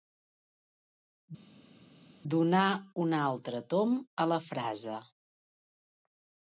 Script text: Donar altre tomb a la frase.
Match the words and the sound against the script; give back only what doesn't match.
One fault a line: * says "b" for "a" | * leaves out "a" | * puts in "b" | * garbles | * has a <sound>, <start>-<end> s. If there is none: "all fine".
* puts in "un"